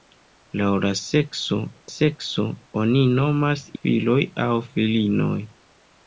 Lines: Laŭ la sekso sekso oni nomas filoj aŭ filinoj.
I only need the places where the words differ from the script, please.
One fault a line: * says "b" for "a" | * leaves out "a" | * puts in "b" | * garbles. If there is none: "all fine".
all fine